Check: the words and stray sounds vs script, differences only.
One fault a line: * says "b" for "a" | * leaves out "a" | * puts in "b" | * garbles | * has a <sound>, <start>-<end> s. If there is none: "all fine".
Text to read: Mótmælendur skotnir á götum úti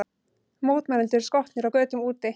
all fine